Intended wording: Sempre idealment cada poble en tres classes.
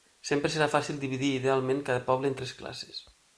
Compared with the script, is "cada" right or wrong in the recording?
right